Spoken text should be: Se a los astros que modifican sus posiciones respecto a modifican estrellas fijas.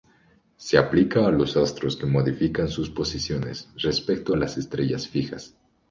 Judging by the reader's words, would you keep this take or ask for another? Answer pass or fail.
fail